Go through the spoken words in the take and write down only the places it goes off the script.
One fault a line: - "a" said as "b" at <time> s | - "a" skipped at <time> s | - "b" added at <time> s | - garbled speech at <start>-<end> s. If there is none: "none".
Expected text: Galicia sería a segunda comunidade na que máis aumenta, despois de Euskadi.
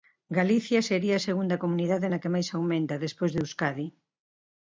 none